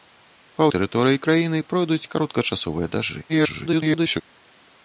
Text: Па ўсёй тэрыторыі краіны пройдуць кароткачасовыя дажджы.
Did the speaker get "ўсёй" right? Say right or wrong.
wrong